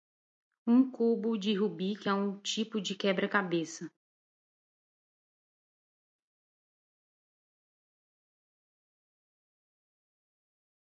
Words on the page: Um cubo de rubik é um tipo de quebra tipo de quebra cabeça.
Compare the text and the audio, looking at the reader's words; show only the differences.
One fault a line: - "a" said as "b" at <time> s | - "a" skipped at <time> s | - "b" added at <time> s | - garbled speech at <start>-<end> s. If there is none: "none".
- "tipo de quebra" skipped at 3.3 s